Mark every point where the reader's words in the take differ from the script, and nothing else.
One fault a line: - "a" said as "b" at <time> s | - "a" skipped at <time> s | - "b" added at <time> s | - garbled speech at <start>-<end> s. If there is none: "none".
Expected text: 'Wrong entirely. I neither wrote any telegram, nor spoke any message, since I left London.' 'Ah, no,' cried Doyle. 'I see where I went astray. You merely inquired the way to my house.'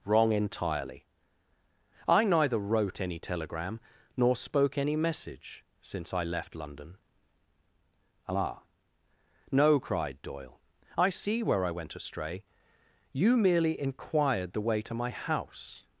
none